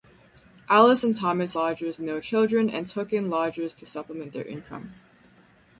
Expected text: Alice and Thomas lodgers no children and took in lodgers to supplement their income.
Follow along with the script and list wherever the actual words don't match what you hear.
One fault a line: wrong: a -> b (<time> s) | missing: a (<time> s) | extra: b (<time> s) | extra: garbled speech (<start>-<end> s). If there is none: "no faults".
no faults